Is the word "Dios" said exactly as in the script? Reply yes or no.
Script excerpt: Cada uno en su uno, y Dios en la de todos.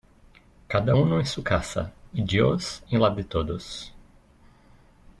yes